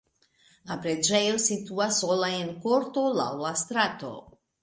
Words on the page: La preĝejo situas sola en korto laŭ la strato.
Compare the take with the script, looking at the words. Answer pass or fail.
pass